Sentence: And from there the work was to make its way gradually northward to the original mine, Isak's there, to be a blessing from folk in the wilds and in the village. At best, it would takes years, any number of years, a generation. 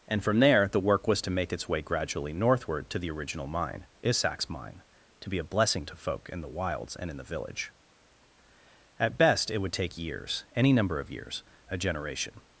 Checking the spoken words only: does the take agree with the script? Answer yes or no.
no